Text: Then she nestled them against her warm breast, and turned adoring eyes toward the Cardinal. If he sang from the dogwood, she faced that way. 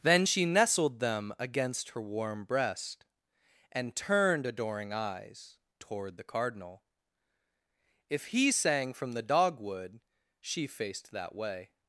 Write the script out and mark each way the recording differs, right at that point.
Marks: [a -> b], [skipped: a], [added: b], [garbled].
Then she nestled them against her warm breast, and turned adoring eyes toward the Cardinal. If he sang from the dogwood, she faced that way.